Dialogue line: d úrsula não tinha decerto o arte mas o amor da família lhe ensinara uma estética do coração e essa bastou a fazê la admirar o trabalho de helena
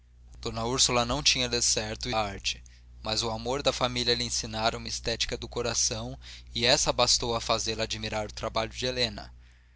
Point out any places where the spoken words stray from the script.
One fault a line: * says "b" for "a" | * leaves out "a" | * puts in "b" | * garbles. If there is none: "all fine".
all fine